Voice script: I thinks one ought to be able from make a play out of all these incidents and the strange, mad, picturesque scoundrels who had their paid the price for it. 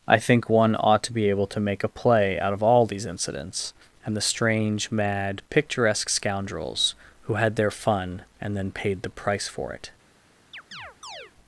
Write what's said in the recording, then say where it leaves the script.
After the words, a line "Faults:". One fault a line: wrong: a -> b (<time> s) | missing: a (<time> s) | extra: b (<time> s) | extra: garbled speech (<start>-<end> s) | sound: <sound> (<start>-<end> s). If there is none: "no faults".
I think one ought to be able to make a play out of all these incidents and the strange, mad, picturesque scoundrels who had their fun and then paid the price for it.
Faults:
wrong: thinks -> think (0.2 s)
wrong: from -> to (1.5 s)
extra: fun and then (7.7 s)
sound: chirp (10.5-11.3 s)